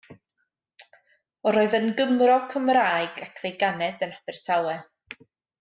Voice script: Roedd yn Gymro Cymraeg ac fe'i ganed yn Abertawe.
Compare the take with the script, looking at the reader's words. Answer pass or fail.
pass